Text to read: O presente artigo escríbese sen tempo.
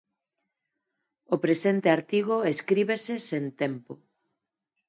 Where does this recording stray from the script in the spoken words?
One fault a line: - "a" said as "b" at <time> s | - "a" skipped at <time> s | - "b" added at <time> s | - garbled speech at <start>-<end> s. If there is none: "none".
none